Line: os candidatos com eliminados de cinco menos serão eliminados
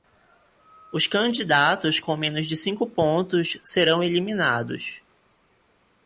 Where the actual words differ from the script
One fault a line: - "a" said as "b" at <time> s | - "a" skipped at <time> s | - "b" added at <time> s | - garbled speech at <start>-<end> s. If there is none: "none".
- "eliminados" said as "menos" at 2.2 s
- "menos" said as "pontos" at 2.9 s